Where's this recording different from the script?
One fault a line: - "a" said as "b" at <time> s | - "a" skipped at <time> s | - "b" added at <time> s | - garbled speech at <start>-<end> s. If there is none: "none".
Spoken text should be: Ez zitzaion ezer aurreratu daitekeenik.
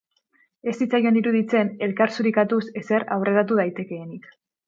- "iruditzen elkar zurikatuz" added at 1.2 s